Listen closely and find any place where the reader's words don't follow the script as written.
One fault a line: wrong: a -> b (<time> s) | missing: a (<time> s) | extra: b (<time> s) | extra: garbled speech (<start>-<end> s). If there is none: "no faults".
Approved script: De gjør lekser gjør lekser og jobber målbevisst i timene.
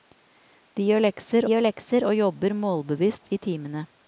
no faults